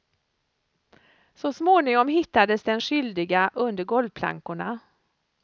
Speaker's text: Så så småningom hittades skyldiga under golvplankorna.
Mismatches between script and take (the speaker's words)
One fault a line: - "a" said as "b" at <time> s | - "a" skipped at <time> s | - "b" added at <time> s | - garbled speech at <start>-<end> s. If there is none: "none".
- "så" skipped at 1.5 s
- "den" added at 2.6 s